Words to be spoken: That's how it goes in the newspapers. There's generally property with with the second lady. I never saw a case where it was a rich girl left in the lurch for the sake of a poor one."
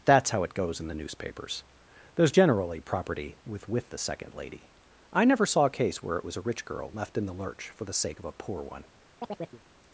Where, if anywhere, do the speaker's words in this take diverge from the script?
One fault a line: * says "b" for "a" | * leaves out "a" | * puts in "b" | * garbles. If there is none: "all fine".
all fine